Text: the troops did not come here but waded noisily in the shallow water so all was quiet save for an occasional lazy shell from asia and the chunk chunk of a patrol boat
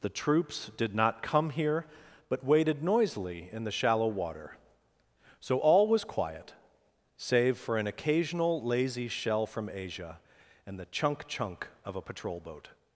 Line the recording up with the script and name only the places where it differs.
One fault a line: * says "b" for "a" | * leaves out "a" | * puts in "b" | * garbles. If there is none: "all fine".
all fine